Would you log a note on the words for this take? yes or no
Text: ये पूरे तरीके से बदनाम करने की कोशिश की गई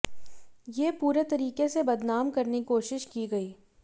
yes